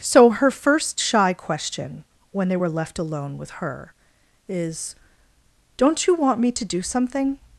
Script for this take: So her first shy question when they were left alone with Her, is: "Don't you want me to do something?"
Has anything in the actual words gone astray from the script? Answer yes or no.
no